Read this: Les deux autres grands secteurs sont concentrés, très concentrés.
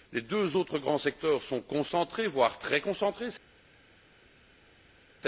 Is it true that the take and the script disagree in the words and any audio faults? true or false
true